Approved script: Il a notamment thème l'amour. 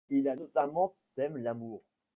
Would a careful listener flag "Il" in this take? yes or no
no